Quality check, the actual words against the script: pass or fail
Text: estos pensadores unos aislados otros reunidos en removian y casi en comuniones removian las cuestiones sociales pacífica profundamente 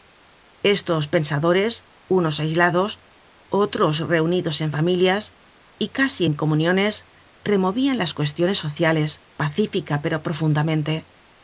fail